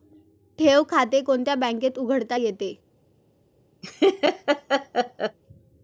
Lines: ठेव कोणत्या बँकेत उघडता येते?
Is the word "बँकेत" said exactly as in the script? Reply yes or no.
yes